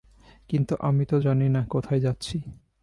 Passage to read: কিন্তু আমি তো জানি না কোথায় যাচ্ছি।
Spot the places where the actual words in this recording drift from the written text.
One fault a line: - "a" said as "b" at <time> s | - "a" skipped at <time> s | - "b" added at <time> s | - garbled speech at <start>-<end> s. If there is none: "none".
none